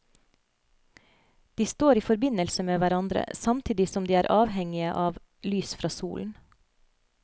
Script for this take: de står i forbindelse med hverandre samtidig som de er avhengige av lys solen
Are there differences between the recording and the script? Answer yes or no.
yes